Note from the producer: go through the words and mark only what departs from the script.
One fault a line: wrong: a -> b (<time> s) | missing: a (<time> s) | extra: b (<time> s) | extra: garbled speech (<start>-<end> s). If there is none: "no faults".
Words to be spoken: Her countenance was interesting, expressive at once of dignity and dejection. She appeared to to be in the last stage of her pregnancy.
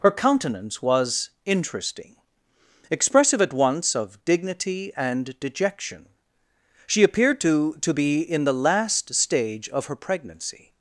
no faults